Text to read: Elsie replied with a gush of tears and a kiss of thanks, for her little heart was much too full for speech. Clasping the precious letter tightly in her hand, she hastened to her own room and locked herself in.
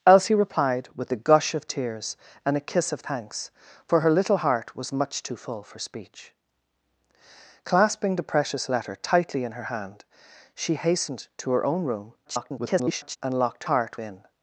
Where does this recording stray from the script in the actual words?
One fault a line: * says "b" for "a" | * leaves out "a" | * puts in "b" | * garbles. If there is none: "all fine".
* garbles
* says "heart" for "herself"